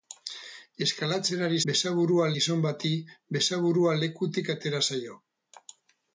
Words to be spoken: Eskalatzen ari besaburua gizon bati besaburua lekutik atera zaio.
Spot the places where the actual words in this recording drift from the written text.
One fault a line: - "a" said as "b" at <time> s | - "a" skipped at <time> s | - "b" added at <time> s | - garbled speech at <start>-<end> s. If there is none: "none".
none